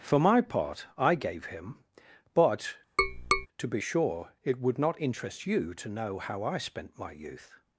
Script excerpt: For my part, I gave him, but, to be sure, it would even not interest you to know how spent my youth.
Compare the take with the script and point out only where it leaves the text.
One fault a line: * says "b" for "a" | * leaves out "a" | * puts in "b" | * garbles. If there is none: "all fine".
* leaves out "even"
* puts in "I"